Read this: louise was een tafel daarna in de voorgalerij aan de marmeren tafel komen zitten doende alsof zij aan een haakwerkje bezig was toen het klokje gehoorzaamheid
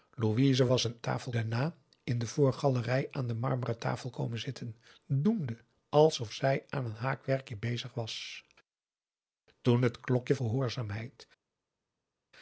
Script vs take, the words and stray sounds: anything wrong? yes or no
no